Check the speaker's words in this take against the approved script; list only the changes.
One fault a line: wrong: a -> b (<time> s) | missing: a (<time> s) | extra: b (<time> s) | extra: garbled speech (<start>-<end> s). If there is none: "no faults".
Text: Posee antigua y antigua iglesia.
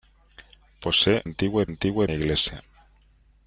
no faults